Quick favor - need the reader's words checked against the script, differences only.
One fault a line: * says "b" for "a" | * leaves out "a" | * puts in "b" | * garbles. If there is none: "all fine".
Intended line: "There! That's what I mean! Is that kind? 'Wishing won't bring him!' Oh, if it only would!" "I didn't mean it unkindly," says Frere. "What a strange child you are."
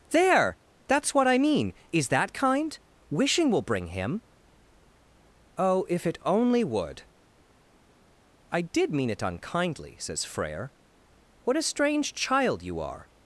* says "will" for "won't"
* says "did" for "didn't"